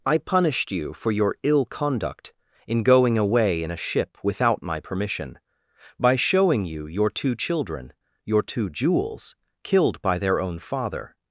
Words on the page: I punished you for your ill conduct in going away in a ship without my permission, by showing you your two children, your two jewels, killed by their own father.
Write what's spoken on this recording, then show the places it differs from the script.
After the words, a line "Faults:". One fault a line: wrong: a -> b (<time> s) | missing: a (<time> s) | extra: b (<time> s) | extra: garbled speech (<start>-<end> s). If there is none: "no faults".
I punished you for your ill conduct in going away in a ship without my permission, by showing you your two children, your two jewels, killed by their own father.
Faults:
no faults